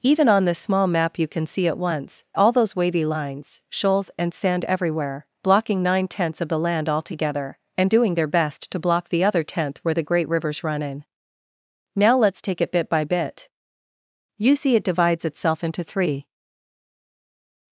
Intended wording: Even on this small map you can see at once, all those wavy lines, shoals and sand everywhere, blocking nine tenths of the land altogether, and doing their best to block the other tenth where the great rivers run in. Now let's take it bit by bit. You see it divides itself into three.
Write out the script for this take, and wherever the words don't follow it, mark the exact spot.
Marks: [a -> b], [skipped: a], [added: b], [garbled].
Even on this small map you can see at once, all those wavy lines, shoals and sand everywhere, blocking nine tenths of the land altogether, and doing their best to block the other tenth where the great rivers run in. Now let's take it bit by bit. You see it divides itself into three.